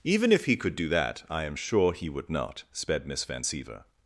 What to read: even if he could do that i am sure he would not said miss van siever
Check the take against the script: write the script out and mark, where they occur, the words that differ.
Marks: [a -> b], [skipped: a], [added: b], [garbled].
even if he could do that i am sure he would not [said -> sped] miss van siever